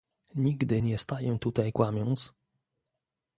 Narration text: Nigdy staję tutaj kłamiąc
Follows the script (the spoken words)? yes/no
no